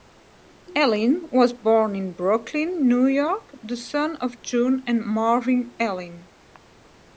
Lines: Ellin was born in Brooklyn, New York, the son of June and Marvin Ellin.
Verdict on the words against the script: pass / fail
pass